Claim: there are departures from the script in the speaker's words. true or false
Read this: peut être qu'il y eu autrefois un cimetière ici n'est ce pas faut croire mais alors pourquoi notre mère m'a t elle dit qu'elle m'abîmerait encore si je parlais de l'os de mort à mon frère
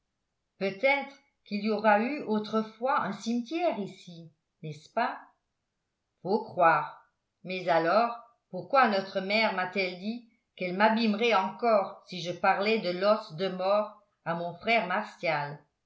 true